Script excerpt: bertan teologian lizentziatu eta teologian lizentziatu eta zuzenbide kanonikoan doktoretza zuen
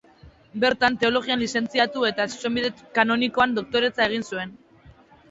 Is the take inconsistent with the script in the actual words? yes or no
yes